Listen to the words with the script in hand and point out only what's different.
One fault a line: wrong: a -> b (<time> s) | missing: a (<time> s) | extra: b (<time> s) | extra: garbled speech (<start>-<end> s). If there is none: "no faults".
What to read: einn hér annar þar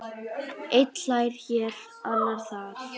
extra: hlær (1.0 s)